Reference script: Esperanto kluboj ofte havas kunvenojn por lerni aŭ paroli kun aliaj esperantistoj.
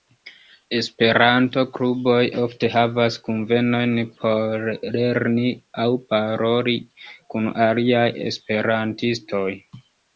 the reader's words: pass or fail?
pass